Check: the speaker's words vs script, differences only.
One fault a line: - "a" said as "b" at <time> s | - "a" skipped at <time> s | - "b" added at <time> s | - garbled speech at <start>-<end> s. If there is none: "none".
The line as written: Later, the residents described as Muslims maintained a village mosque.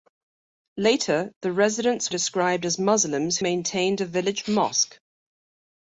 none